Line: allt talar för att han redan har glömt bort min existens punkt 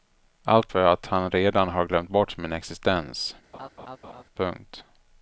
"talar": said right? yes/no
no